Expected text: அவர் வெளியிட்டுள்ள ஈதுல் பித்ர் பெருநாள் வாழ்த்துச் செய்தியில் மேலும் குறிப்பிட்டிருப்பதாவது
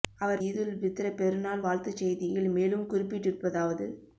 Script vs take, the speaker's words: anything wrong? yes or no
yes